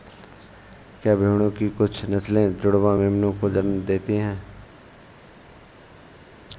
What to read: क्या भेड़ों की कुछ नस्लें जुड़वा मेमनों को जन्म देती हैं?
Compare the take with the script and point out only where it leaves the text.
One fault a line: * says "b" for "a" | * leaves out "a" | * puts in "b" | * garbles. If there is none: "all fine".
all fine